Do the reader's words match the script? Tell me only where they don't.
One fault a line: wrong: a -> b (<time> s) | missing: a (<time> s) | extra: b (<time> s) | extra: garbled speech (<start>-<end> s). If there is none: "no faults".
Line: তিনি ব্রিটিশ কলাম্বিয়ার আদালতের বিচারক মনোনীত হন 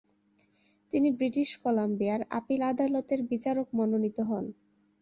extra: আপিল (2.4 s)